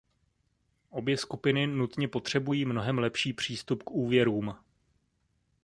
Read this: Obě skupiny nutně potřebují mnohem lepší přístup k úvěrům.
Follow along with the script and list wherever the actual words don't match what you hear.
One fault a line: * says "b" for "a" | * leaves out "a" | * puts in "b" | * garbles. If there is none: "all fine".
all fine